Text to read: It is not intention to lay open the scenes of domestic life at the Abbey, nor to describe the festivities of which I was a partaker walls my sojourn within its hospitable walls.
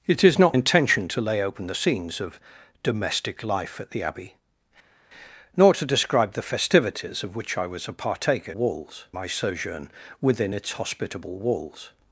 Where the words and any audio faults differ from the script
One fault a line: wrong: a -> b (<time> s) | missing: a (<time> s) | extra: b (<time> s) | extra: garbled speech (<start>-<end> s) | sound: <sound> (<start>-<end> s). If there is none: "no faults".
no faults